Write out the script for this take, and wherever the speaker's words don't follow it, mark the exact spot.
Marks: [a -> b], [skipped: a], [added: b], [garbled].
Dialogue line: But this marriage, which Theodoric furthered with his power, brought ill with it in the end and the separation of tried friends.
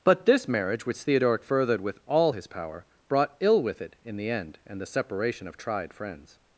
But this marriage, which Theodoric furthered with [added: all] his power, brought ill with it in the end and the separation of tried friends.